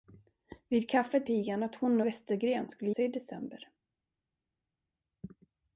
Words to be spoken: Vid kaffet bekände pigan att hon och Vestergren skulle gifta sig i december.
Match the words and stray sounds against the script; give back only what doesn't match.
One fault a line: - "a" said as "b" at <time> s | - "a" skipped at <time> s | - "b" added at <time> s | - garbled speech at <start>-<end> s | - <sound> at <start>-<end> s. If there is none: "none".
- "bekände" skipped at 1.3 s
- "och" skipped at 2.0 s
- "gifta" skipped at 2.9 s